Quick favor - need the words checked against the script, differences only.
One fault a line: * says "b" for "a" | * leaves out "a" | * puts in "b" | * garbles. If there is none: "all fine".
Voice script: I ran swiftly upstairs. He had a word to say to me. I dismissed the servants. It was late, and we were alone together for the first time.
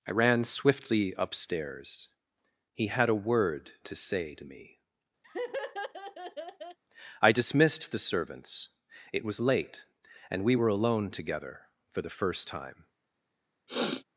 all fine